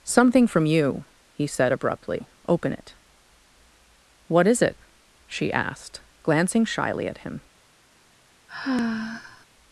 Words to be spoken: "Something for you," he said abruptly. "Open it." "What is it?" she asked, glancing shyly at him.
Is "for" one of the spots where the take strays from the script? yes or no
yes